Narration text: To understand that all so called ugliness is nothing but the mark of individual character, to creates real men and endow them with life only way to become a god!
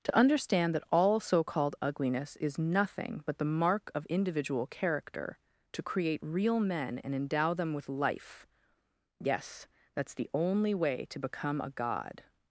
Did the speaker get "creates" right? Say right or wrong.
wrong